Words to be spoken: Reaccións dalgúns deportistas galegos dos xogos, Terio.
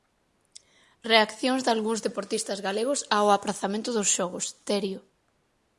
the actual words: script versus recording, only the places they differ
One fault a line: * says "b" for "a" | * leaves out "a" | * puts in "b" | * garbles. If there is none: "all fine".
* puts in "ao aprazamento"